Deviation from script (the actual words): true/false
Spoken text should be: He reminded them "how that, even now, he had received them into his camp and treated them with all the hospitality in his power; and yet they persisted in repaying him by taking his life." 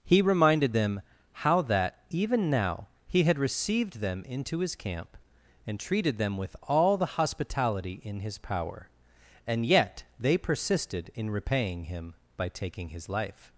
false